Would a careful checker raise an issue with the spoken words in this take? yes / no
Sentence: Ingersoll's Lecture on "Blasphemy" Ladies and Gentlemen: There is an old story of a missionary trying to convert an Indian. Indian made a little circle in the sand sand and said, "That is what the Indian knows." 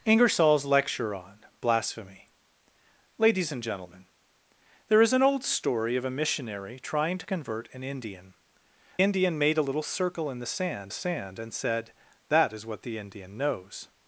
no